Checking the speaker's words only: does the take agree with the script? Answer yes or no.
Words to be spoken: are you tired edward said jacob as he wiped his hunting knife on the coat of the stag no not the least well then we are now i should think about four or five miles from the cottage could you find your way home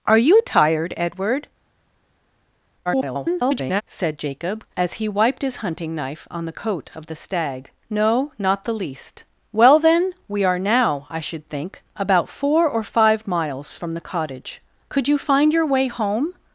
no